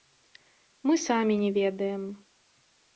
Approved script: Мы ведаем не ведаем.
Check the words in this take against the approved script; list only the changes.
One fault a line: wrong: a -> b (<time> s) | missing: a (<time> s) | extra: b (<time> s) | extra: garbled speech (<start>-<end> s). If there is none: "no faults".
wrong: ведаем -> самі (1.1 s)